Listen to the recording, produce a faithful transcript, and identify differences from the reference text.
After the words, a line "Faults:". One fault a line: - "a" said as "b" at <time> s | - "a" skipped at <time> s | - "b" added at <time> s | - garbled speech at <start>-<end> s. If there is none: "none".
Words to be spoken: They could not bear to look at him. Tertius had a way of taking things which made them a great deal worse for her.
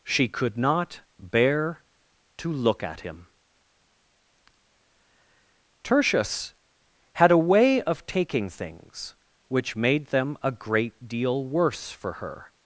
She could not bear to look at him. Tertius had a way of taking things which made them a great deal worse for her.
Faults:
- "They" said as "She" at 0.0 s